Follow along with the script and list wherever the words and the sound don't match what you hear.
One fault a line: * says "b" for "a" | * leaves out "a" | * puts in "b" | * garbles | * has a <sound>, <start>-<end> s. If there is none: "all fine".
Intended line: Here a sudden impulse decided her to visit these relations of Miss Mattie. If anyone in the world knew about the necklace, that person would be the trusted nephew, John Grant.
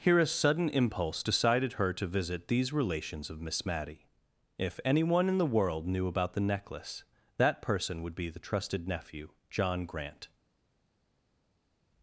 all fine